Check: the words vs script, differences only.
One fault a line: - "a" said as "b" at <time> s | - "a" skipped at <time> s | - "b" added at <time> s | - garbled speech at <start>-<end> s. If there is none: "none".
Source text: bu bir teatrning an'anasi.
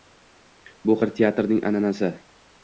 none